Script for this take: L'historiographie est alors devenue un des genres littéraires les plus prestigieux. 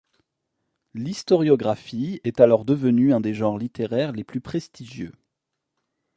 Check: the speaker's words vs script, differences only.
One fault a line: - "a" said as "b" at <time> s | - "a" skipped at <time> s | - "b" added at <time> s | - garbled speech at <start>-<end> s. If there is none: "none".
none